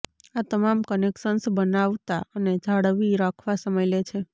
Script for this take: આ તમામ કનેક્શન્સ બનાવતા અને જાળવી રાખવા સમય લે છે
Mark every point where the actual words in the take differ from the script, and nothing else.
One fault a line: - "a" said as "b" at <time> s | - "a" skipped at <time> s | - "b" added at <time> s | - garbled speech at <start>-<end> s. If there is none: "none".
none